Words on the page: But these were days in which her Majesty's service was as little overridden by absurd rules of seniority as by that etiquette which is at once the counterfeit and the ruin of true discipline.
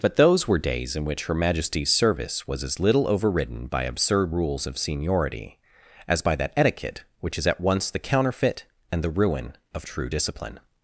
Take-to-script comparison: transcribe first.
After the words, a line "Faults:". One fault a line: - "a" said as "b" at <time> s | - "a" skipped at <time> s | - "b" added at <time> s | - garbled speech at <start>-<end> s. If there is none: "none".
But those were days in which her Majesty's service was as little overridden by absurd rules of seniority as by that etiquette which is at once the counterfeit and the ruin of true discipline.
Faults:
- "these" said as "those" at 0.1 s